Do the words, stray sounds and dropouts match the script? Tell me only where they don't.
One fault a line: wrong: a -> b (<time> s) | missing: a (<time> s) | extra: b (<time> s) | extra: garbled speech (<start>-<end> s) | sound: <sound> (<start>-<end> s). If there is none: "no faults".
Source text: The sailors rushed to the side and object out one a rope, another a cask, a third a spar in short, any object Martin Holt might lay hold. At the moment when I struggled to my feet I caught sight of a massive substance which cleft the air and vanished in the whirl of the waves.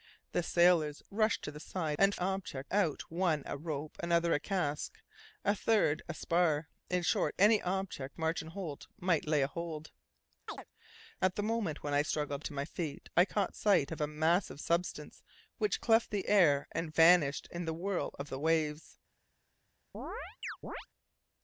sound: chirp (10.5-10.6 s)
sound: chirp (19.9-20.9 s)